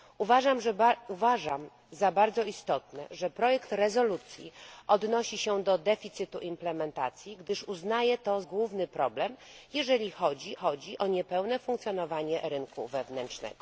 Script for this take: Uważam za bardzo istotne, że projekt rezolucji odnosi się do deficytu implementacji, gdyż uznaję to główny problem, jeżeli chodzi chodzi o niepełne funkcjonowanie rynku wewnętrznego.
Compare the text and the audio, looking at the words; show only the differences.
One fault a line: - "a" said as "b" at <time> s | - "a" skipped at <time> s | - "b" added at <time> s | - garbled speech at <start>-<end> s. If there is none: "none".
none